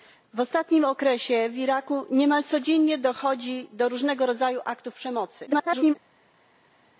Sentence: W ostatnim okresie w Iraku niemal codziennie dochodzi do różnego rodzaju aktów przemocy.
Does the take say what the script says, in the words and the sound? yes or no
no